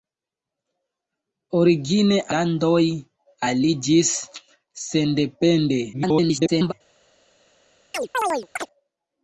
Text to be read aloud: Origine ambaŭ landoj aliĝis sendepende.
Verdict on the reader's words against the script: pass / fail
fail